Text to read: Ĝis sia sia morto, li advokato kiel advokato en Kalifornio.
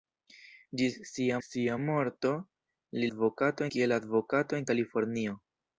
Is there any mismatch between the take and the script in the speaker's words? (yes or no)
no